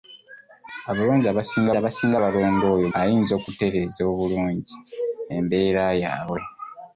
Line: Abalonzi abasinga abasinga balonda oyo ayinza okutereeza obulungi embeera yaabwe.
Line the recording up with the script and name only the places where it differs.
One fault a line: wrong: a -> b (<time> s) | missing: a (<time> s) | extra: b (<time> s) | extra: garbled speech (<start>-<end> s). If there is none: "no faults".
no faults